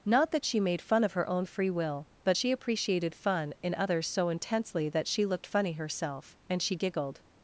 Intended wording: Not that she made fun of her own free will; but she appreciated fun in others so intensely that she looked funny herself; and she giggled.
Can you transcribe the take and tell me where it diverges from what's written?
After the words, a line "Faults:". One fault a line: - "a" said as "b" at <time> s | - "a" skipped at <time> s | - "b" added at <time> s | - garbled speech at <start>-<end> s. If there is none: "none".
Not that she made fun of her own free will; but she appreciated fun in others so intensely that she looked funny herself; and she giggled.
Faults:
none